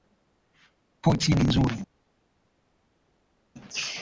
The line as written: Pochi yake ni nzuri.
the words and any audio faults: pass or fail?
fail